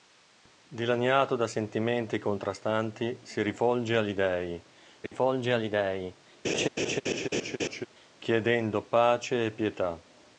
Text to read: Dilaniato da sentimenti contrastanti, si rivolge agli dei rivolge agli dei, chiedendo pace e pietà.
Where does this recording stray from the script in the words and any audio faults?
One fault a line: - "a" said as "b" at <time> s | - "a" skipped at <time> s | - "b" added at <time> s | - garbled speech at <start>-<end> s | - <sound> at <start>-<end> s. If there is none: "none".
- dropout at 5.1-5.1 s
- laugh at 6.4-7.9 s